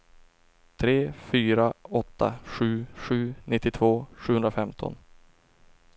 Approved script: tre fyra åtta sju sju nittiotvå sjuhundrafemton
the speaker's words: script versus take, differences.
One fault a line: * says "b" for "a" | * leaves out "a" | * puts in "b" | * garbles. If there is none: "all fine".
all fine